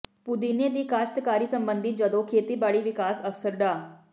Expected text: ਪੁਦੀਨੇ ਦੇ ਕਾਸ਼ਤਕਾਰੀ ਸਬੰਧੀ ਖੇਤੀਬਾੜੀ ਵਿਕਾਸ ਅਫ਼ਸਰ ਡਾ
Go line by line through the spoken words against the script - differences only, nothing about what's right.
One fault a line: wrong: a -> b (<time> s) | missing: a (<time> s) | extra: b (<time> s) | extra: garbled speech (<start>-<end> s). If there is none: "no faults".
wrong: ਦੇ -> ਦੀ (0.7 s)
extra: ਜਦੋਂ (1.9 s)